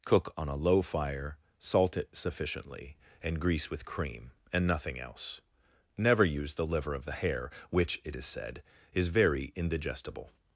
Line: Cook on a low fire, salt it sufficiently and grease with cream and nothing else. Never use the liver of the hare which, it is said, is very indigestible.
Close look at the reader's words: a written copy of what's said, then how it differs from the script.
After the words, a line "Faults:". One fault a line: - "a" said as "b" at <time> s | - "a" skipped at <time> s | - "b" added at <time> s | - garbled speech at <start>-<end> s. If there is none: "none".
Cook on a low fire, salt it sufficiently and grease with cream and nothing else. Never use the liver of the hare which, it is said, is very indigestible.
Faults:
none